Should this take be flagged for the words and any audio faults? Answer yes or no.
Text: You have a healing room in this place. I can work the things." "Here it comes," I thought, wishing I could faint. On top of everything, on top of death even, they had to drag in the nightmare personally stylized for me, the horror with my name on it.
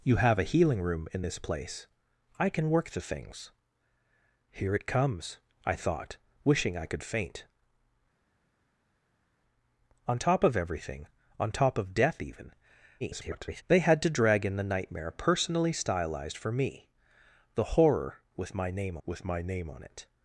yes